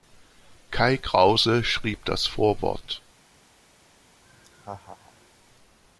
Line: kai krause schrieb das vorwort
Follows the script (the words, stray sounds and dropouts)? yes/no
no